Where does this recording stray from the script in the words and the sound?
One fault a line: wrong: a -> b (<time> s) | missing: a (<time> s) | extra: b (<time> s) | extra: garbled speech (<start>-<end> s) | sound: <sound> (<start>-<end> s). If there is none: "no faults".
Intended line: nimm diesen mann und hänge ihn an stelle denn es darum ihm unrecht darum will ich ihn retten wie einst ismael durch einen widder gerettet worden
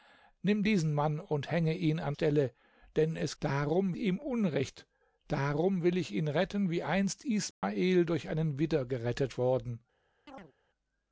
sound: dropout (7.5-7.6 s)
sound: chirp (10.3-10.5 s)